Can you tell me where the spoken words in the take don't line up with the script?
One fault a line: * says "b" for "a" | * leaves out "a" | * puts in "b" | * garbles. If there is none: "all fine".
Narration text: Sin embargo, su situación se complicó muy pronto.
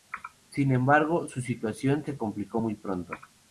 all fine